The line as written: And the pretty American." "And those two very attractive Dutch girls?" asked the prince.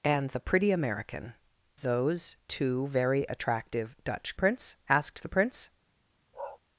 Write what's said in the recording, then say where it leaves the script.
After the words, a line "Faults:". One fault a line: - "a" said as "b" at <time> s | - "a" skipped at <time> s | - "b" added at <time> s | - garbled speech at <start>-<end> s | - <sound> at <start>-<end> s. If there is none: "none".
And the pretty American." "Those two very attractive Dutch prince?" asked the prince.
Faults:
- "And" skipped at 1.3 s
- "girls" said as "prince" at 4.3 s
- bark at 6.3-6.6 s